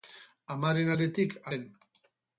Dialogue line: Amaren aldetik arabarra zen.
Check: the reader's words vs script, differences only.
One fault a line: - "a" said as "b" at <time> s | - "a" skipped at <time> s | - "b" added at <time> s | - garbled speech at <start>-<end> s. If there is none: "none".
- "arabarra" skipped at 1.4 s